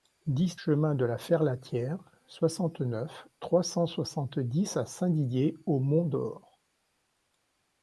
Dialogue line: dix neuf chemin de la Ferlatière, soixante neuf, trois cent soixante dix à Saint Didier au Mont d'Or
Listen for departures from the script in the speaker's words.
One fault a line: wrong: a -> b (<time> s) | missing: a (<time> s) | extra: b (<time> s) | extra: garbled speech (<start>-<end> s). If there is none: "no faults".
missing: neuf (0.6 s)